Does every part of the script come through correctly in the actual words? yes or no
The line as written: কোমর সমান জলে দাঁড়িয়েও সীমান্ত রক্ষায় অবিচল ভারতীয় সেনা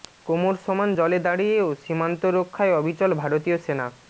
yes